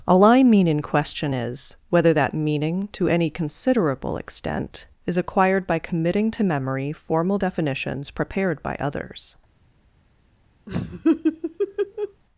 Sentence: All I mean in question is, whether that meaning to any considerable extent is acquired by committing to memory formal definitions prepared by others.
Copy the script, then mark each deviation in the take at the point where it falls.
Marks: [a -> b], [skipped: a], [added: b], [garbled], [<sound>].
All I mean in question is, whether that meaning to any considerable extent is acquired by committing to memory formal definitions prepared by others. [laugh]